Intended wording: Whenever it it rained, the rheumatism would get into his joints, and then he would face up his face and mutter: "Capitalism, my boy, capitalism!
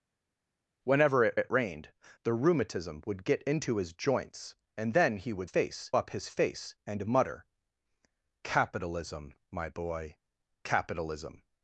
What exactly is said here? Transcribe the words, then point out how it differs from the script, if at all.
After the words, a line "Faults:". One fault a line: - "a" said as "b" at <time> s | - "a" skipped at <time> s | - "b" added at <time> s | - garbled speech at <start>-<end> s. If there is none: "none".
Whenever it it rained, the rheumatism would get into his joints, and then he would face up his face and mutter: "Capitalism, my boy, capitalism!
Faults:
none